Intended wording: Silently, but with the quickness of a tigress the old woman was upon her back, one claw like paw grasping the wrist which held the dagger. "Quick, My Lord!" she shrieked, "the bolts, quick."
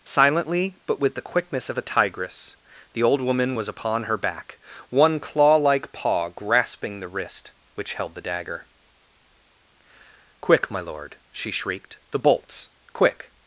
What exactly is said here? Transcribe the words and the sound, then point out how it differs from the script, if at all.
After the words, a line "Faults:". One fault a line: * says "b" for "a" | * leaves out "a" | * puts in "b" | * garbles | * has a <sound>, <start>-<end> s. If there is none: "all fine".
Silently, but with the quickness of a tigress the old woman was upon her back, one claw like paw grasping the wrist which held the dagger. "Quick, My Lord!" she shrieked, "the bolts, quick."
Faults:
all fine